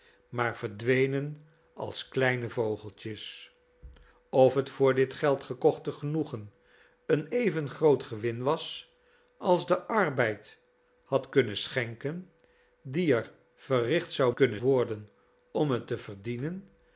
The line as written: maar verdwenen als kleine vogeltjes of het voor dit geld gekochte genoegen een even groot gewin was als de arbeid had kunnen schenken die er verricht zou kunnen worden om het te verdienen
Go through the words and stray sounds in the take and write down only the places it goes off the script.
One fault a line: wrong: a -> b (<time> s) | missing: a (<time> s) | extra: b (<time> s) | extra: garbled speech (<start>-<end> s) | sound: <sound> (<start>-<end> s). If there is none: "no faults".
no faults